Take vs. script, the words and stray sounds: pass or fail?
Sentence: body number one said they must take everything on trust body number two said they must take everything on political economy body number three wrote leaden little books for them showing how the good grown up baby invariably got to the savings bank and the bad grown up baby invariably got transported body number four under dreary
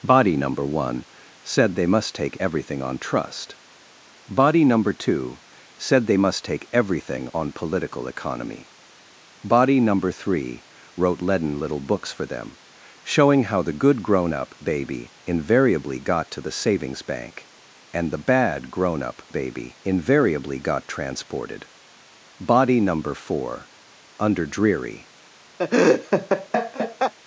fail